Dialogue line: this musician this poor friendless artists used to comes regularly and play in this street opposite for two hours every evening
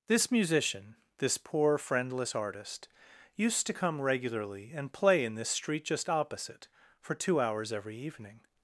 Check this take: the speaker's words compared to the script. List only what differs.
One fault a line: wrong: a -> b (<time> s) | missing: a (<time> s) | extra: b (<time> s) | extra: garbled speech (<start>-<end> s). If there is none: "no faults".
wrong: artists -> artist (2.3 s)
wrong: comes -> come (3.7 s)
extra: just (5.8 s)